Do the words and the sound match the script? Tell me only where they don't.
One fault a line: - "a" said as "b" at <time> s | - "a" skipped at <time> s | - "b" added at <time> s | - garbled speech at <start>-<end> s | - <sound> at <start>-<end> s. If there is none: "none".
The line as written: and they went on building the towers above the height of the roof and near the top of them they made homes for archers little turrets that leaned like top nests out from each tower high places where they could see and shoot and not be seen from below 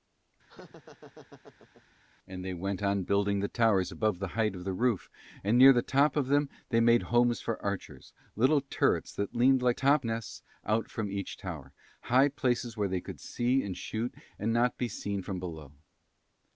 - laugh at 0.5-1.8 s